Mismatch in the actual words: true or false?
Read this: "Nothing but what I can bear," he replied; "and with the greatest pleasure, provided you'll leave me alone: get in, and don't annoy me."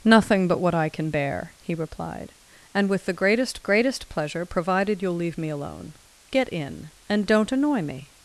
true